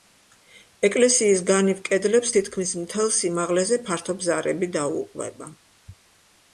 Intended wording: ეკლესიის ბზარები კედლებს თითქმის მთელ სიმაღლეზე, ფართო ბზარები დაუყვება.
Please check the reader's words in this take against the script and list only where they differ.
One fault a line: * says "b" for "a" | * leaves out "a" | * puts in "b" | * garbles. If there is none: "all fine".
* says "განივ" for "ბზარები"